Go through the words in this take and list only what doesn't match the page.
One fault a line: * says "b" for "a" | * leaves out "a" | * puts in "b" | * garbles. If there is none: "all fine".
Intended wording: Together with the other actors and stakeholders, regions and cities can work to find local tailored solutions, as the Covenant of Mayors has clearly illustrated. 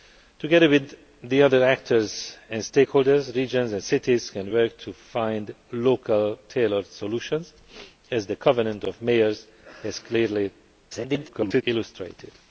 * garbles